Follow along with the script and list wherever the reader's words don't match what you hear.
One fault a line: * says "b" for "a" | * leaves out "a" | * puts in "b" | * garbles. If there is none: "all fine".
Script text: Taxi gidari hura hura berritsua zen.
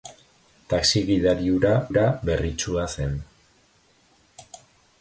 all fine